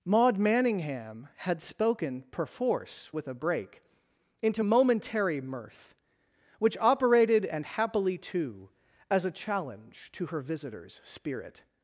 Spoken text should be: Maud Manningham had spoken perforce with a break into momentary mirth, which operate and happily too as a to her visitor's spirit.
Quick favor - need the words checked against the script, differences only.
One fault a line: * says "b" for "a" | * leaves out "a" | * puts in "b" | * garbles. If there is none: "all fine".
* says "operated" for "operate"
* puts in "challenge"